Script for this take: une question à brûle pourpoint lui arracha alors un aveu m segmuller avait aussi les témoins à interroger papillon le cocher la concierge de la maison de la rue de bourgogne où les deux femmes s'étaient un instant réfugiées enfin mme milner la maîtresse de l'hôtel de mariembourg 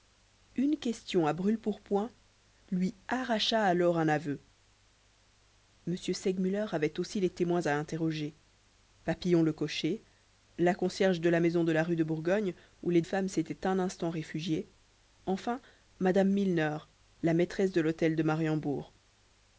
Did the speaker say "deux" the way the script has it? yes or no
no